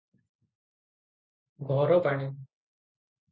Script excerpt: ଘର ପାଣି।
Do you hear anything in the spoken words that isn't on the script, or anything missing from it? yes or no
no